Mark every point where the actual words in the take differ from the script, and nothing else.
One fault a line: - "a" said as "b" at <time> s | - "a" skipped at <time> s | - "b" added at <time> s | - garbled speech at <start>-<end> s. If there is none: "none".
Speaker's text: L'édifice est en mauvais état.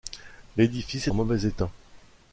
- "est" skipped at 1.1 s